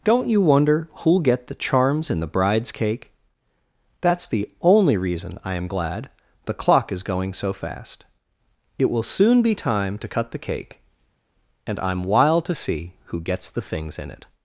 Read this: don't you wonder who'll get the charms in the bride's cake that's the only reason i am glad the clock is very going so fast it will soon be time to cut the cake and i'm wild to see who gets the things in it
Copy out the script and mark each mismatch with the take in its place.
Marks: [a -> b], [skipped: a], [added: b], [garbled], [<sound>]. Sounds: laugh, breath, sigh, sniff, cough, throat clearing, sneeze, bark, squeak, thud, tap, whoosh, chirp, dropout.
don't you wonder who'll get the charms in the bride's cake that's the only reason i am glad the clock is [skipped: very] going so fast it will soon be time to cut the cake and i'm wild to see who gets the things in it